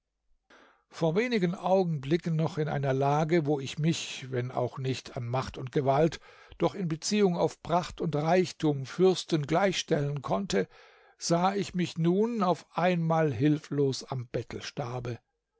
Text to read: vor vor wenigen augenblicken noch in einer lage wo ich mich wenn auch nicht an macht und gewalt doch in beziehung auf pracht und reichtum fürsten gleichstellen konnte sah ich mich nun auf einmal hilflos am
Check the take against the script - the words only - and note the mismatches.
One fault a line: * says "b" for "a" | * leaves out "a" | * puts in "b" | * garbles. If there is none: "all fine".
* leaves out "vor"